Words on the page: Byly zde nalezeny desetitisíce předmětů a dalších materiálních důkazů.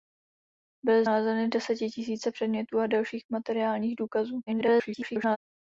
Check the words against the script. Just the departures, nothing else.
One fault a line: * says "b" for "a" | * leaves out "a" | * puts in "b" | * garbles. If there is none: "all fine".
* leaves out "zde"
* garbles